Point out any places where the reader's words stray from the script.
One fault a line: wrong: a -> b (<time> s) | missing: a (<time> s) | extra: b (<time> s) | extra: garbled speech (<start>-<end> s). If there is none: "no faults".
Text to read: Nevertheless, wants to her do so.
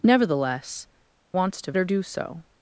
no faults